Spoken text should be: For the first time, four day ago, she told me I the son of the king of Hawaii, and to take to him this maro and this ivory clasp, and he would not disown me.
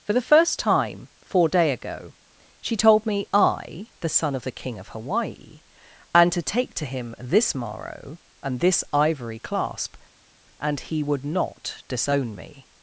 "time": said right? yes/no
yes